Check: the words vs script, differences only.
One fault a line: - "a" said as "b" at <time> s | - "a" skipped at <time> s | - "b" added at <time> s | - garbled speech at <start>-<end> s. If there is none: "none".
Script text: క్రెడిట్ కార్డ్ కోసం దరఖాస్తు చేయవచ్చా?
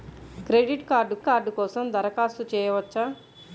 - "కార్డ్" added at 1.3 s